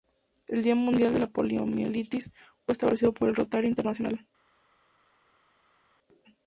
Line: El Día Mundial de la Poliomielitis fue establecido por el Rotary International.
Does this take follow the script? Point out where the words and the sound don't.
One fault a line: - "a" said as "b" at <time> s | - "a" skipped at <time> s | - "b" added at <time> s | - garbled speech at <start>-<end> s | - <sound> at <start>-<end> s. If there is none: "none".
none